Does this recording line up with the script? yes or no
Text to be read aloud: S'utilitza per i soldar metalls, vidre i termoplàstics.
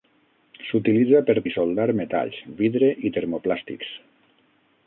yes